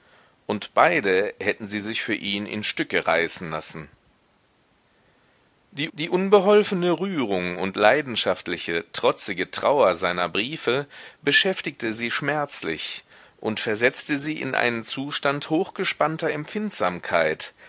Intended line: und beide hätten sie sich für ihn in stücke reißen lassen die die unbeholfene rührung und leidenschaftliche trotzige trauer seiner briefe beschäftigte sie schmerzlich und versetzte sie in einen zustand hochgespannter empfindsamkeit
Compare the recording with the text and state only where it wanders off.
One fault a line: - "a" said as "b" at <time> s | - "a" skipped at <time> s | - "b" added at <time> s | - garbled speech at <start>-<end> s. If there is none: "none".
none